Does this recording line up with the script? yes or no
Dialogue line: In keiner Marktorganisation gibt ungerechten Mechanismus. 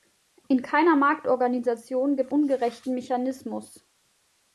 yes